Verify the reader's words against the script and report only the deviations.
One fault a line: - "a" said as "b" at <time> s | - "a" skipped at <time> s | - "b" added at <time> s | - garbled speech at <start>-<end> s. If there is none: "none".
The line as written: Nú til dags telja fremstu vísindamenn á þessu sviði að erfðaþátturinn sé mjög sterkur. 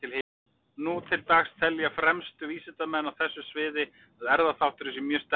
none